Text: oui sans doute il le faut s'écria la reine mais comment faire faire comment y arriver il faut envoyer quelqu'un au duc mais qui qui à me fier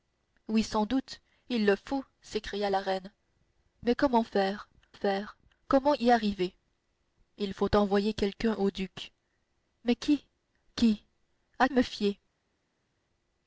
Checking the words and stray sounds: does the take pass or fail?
pass